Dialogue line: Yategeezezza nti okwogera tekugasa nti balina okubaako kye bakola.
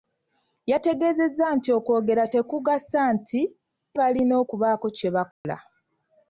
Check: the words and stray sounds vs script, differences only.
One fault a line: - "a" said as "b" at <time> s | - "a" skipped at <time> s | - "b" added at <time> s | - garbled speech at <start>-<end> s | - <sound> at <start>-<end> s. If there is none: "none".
- dropout at 5.3-5.5 s